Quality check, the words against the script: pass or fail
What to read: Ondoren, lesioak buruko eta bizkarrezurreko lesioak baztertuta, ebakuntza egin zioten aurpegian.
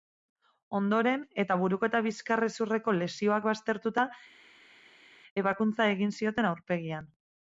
fail